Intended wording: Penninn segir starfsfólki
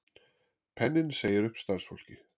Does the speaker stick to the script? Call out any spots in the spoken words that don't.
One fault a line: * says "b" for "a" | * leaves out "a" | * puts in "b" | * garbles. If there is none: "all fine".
* puts in "upp"